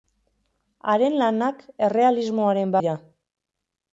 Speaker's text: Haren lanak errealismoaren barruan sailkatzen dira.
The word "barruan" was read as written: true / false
false